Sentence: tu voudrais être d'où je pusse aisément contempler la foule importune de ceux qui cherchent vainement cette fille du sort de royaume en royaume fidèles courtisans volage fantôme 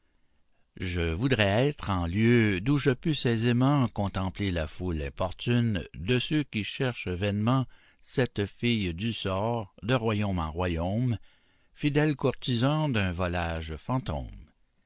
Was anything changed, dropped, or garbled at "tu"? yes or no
yes